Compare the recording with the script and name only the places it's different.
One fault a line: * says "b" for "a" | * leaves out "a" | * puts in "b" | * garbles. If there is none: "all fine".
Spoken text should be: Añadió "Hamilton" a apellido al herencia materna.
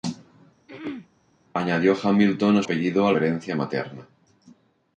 all fine